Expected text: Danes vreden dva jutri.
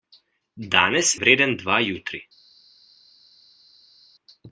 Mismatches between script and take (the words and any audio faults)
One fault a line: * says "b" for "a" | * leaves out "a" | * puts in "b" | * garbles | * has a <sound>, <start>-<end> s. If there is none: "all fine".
all fine